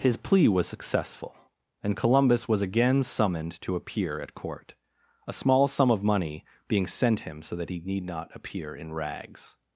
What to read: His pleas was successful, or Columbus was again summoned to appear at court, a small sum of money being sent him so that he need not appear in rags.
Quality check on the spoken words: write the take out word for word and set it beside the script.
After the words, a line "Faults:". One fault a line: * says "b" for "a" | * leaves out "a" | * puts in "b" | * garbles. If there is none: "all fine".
His plea was successful, and Columbus was again summoned to appear at court, a small sum of money being sent him so that he need not appear in rags.
Faults:
* says "plea" for "pleas"
* says "and" for "or"